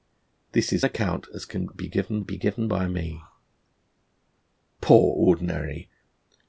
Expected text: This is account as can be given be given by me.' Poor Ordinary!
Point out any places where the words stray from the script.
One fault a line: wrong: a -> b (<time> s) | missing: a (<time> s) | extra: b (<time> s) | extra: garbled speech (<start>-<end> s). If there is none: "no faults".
no faults